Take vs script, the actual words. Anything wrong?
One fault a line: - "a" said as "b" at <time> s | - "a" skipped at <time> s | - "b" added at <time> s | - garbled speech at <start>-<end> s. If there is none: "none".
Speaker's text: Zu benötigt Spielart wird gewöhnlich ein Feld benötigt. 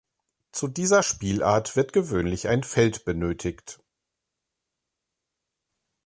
- "benötigt" said as "dieser" at 0.7 s